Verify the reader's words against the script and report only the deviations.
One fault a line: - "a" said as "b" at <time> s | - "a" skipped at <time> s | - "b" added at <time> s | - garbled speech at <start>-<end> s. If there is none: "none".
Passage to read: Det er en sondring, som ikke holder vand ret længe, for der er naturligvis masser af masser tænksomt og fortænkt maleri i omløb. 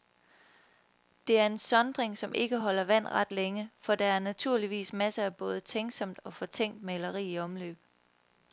- "masser" said as "både" at 5.3 s